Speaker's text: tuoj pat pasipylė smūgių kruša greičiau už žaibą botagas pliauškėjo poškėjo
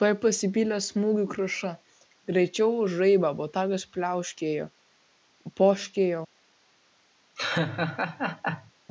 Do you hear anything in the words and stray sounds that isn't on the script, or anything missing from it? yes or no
yes